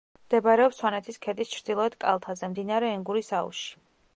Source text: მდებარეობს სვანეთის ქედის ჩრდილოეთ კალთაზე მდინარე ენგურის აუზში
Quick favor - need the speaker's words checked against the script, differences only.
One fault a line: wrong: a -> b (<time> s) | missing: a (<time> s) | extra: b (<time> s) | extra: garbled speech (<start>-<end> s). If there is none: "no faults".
no faults